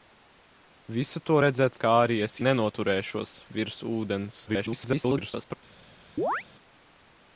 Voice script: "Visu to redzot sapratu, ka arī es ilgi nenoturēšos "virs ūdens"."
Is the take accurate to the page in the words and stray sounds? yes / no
no